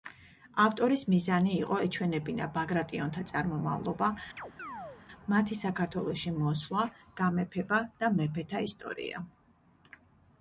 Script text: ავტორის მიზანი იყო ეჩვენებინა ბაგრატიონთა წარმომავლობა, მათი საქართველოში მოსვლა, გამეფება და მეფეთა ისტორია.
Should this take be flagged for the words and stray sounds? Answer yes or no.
yes